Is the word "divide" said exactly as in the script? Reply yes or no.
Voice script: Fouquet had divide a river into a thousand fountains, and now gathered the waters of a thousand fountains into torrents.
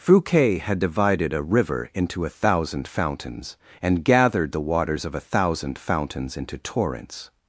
no